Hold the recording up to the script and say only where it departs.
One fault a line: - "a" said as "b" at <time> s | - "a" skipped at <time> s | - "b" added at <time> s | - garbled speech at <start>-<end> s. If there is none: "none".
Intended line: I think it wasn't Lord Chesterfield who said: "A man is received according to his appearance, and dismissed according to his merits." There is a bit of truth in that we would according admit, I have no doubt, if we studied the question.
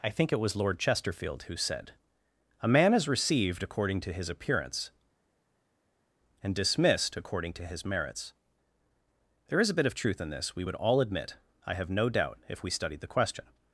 - "wasn't" said as "was" at 0.4 s
- "that" said as "this" at 10.3 s
- "according" said as "all" at 10.8 s